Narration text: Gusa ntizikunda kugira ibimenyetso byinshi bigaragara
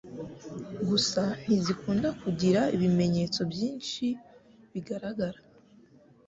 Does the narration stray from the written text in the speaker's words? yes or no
no